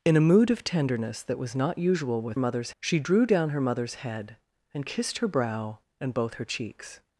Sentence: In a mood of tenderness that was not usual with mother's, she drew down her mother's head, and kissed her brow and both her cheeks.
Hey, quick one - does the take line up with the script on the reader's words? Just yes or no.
yes